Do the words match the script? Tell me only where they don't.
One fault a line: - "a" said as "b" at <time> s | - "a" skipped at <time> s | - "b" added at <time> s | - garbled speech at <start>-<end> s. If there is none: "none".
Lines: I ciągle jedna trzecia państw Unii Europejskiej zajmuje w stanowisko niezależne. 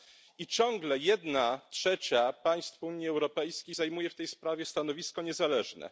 - "tej sprawie" added at 4.2 s